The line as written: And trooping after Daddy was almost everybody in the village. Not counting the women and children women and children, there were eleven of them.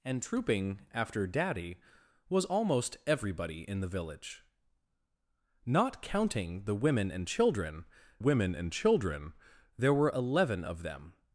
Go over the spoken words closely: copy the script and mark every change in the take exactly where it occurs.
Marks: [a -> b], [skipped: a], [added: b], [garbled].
And trooping after Daddy was almost everybody in the village. Not counting the women and children women and children, there were eleven of them.